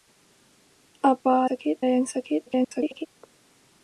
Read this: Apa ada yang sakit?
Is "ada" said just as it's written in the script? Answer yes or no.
no